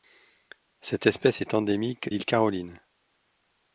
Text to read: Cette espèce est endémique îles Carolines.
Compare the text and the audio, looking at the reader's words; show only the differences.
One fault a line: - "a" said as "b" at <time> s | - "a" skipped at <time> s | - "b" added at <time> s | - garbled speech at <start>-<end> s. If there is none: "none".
none